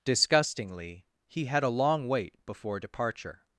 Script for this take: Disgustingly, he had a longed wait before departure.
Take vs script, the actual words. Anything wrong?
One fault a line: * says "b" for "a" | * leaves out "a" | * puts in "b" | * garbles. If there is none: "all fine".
* says "long" for "longed"